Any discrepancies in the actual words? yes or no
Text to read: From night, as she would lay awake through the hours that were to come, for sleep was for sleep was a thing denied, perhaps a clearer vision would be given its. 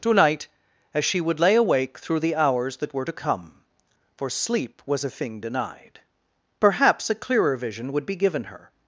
yes